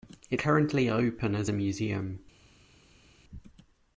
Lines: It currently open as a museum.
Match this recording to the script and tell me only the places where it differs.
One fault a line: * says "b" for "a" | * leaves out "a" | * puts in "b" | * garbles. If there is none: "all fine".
all fine